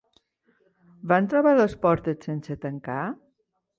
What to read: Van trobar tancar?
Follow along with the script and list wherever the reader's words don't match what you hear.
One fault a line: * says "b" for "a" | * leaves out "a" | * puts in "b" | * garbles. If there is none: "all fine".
* puts in "les portes sense"